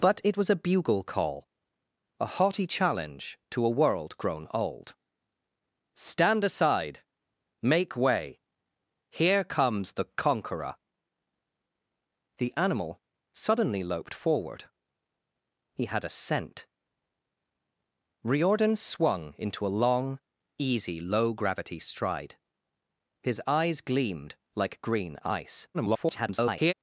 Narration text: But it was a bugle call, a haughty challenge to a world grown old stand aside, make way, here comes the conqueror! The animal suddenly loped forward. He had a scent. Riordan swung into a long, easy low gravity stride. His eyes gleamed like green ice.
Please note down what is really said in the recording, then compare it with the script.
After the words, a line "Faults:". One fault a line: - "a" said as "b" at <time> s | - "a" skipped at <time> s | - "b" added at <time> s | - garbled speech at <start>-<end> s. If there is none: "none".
But it was a bugle call, a haughty challenge to a world grown old stand aside, make way, here comes the conqueror! The animal suddenly loped forward. He had a scent. Riordan swung into a long, easy low gravity stride. His eyes gleamed like green ice. [garbled]
Faults:
- garbled speech at 25.7-26.7 s